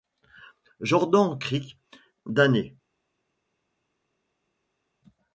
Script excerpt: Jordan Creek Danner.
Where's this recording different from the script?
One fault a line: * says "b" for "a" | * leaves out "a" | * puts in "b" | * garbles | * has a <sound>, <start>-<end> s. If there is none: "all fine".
all fine